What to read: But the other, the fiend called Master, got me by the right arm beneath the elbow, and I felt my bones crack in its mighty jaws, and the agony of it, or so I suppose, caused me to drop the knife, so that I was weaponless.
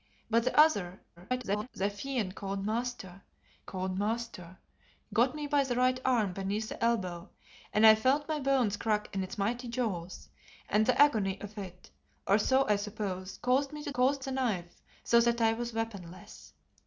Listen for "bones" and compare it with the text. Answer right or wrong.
right